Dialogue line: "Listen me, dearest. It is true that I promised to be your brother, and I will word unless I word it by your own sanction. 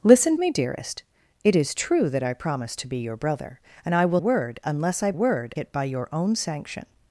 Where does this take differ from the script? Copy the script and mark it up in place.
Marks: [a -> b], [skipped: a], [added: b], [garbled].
"Listen me, dearest. It is true that I promised to be your brother, and I will word unless I word it by your own sanction.